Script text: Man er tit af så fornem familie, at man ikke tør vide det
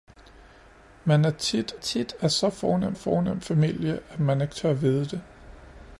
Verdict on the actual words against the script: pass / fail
fail